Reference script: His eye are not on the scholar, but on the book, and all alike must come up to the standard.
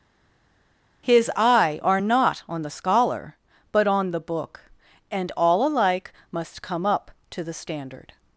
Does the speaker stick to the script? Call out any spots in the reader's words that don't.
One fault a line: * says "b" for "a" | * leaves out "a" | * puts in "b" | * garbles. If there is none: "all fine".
all fine